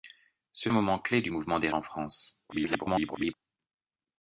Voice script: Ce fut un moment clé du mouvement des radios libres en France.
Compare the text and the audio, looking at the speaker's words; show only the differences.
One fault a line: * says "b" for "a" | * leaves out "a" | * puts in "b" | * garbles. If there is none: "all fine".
* leaves out "fut"
* leaves out "radios libres"
* garbles